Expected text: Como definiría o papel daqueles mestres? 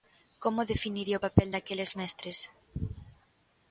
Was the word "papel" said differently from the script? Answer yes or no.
no